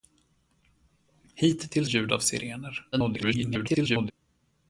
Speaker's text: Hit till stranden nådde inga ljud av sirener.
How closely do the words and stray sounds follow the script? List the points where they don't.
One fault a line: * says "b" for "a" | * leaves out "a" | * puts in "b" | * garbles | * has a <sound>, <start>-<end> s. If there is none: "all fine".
* leaves out "stranden nådde inga"
* garbles